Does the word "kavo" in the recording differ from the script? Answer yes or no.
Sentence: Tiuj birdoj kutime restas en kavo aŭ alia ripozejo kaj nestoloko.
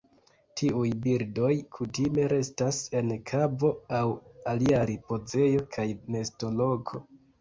no